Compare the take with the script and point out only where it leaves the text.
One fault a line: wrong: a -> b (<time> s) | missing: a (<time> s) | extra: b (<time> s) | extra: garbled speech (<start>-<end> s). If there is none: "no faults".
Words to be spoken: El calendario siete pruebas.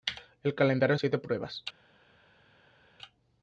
no faults